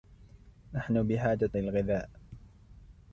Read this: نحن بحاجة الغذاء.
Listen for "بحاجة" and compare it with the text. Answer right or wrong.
right